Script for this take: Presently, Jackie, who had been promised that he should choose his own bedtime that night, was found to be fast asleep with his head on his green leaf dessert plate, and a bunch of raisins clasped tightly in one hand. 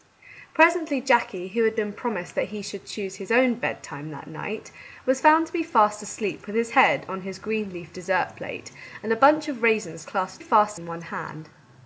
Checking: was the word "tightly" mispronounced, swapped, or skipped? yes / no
yes